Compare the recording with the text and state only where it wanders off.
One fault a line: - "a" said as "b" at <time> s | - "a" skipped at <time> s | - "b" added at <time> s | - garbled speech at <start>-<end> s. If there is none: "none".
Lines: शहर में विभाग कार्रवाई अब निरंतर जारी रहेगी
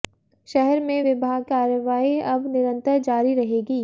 none